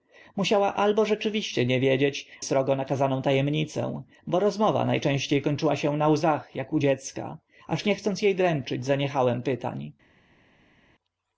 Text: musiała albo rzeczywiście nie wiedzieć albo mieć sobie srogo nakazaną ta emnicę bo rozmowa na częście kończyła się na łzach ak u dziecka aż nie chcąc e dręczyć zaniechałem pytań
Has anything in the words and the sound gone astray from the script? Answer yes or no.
yes